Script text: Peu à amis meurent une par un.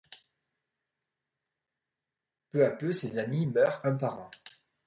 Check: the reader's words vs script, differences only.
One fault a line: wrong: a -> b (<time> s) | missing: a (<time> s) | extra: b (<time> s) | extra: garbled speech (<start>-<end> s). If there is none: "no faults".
extra: peu ses (2.7 s)
wrong: une -> un (3.8 s)